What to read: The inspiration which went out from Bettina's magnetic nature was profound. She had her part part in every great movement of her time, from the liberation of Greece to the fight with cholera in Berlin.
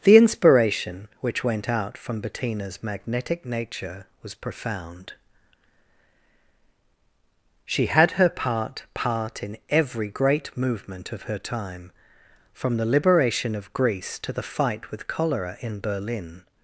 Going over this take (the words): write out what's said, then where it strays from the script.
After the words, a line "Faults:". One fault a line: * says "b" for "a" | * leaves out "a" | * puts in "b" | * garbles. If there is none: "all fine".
The inspiration which went out from Bettina's magnetic nature was profound. She had her part part in every great movement of her time, from the liberation of Greece to the fight with cholera in Berlin.
Faults:
all fine